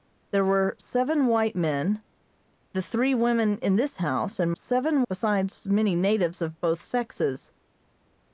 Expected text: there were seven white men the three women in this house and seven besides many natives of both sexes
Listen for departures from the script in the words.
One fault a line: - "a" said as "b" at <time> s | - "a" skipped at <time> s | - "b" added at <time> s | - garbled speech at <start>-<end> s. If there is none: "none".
none